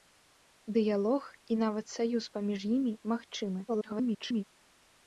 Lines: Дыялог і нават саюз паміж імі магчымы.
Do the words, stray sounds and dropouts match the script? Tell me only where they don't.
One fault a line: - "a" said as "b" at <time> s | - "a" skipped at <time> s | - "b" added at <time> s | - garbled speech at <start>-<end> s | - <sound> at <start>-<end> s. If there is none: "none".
- garbled speech at 3.7-4.4 s